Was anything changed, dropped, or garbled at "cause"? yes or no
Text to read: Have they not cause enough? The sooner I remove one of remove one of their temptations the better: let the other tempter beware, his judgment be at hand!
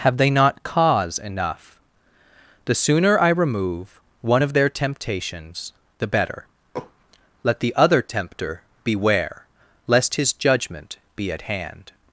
no